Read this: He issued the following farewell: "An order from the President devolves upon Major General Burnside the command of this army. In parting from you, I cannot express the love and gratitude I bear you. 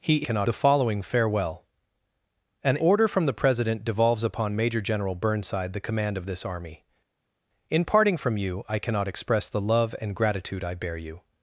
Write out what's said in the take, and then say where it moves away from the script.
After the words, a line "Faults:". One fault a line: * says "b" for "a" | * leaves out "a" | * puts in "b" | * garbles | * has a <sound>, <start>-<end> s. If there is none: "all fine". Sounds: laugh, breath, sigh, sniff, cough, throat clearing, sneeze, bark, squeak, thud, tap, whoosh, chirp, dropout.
He cannot the following farewell: "An order from the President devolves upon Major General Burnside the command of this army. In parting from you, I cannot express the love and gratitude I bear you.
Faults:
* says "cannot" for "issued"